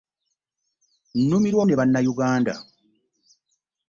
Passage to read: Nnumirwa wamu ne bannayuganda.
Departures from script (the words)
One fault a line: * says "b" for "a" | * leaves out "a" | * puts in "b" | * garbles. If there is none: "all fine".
* leaves out "wamu"